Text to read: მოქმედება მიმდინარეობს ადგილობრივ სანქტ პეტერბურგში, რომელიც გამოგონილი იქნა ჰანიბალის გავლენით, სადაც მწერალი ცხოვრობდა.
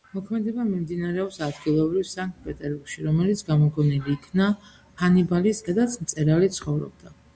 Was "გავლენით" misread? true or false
true